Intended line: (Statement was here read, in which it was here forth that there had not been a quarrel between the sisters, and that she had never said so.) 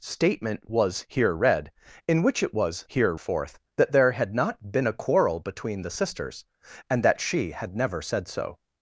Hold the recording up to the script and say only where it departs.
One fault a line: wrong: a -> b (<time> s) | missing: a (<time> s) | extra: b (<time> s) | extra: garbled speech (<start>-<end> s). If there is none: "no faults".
no faults